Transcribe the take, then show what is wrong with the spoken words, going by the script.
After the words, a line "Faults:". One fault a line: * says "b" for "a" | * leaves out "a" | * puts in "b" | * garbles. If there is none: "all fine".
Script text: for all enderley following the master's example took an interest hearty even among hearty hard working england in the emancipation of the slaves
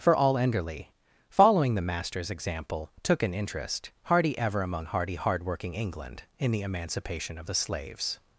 for all enderley following the master's example took an interest hearty ever among hearty hard working england in the emancipation of the slaves
Faults:
* says "ever" for "even"